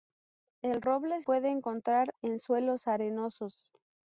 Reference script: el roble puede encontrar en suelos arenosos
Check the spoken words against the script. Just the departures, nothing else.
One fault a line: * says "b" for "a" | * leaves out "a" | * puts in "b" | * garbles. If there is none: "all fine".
all fine